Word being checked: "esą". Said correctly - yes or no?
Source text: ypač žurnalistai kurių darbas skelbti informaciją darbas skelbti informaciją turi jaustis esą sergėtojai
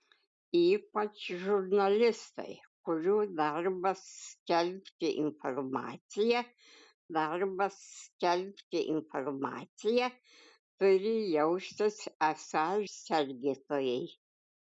yes